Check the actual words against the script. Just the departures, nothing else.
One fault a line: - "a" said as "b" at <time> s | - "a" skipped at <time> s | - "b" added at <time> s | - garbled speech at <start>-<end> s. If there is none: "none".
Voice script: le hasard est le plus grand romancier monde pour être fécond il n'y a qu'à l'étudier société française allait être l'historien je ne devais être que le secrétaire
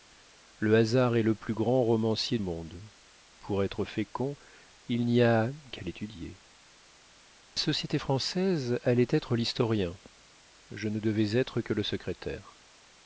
none